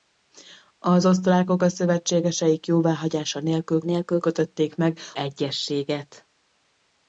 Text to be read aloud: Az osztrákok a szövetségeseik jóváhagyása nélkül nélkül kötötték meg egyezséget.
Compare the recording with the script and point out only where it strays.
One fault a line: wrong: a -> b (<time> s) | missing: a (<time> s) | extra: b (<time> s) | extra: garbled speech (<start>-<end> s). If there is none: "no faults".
no faults